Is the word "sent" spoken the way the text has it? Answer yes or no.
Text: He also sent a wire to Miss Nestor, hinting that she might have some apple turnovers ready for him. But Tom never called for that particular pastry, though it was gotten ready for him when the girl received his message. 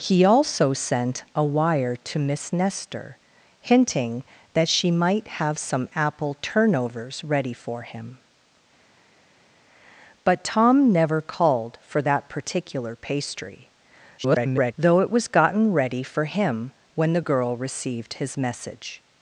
yes